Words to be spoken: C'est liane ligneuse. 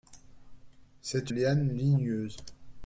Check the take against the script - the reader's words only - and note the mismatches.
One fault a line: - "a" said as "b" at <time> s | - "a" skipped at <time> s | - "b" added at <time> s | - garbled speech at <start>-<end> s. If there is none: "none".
none